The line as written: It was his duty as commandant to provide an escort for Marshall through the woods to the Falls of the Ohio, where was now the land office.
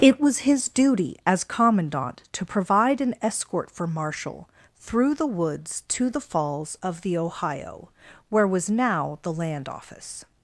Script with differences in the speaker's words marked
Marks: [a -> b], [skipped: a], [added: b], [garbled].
It was his duty as commandant to provide an escort for Marshall through the woods to the Falls of the Ohio, where was now the land office.